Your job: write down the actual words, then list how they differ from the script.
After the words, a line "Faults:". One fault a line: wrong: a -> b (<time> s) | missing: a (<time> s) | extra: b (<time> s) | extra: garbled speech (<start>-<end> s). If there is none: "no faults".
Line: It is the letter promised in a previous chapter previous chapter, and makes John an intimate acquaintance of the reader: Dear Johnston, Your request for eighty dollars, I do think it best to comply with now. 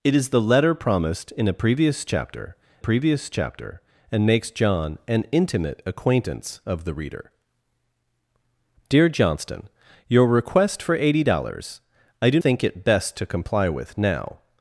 It is the letter promised in a previous chapter previous chapter, and makes John an intimate acquaintance of the reader: Dear Johnston, Your request for eighty dollars, I do think it best to comply with now.
Faults:
no faults